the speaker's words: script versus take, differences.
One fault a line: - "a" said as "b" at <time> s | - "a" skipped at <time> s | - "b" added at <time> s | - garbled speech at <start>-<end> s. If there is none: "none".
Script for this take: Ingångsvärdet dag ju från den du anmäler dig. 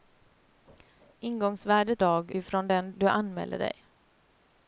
none